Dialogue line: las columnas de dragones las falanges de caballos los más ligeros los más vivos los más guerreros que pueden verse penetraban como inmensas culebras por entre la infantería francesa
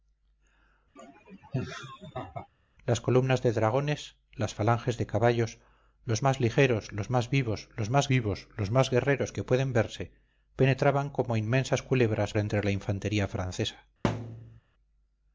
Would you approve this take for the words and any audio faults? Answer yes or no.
no